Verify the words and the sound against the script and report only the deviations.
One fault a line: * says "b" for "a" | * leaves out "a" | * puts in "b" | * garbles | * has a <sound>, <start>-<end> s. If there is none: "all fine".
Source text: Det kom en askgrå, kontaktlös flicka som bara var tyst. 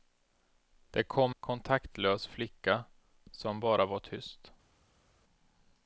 * leaves out "en askgrå"